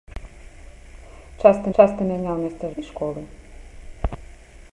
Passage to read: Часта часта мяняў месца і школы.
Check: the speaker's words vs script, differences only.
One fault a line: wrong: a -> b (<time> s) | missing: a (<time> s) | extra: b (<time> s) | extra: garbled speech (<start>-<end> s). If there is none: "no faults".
no faults